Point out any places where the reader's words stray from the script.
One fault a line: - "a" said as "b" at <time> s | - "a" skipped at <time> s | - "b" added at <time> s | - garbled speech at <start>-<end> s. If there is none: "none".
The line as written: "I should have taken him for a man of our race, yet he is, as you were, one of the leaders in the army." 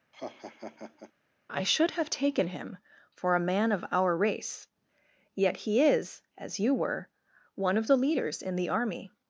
none